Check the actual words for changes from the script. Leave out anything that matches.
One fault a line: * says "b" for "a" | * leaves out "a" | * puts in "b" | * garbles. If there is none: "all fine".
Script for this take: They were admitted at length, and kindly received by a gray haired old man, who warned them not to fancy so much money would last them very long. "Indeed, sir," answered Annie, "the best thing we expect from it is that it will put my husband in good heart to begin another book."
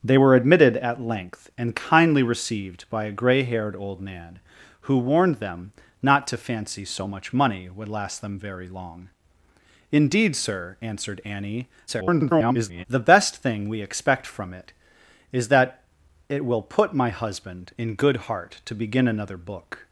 * garbles